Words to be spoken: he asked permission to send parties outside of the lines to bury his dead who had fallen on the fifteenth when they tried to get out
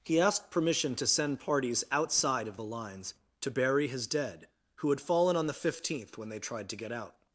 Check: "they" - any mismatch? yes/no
no